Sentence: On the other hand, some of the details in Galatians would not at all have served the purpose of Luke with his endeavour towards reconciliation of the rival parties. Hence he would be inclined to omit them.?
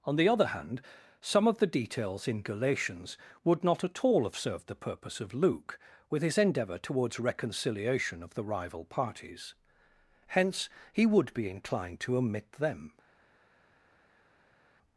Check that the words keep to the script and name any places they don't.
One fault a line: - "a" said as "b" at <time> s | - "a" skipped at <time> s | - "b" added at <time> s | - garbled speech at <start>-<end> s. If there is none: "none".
none